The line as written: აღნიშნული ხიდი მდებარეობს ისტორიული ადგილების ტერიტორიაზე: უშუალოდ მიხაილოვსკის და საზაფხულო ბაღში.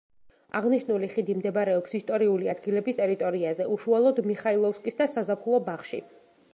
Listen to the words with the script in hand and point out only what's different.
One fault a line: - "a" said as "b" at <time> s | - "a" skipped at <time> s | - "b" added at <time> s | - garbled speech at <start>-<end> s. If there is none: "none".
none